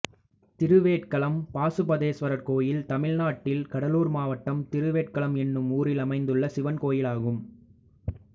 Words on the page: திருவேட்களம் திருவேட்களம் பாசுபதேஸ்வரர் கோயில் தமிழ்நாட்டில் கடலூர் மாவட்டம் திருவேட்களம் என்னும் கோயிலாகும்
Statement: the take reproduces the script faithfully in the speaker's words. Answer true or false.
false